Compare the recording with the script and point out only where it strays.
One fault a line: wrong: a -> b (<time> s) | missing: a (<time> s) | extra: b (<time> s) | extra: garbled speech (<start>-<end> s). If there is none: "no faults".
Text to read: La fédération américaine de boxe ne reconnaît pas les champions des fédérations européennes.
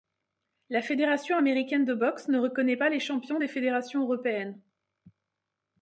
no faults